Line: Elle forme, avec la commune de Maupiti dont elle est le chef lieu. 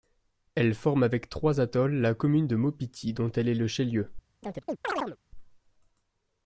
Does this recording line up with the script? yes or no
no